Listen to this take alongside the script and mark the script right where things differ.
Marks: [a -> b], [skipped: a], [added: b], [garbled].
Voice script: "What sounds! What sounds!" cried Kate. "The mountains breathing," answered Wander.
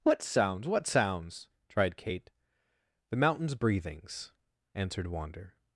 "What sounds! What sounds!" [cried -> tried] Kate. "The mountains [breathing," -> breathings] answered Wander.